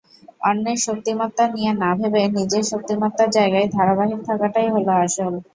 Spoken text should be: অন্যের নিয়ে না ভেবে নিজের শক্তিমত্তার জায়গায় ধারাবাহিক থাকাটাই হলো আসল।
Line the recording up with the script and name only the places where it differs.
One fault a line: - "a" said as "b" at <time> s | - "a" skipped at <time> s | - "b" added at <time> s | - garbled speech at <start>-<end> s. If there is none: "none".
- "শক্তিমত্তা" added at 0.8 s